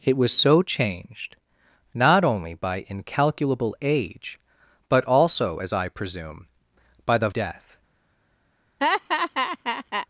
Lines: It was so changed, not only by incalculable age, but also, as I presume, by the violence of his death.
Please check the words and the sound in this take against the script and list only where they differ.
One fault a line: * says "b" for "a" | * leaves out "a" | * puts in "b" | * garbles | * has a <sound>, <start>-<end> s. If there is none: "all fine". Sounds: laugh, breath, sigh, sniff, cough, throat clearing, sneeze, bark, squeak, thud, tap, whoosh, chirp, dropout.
* leaves out "violence of his"
* has a laugh, 8.8-10.1 s